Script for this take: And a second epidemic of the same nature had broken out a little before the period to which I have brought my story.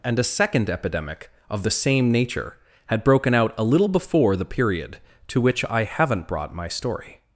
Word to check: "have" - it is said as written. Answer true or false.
false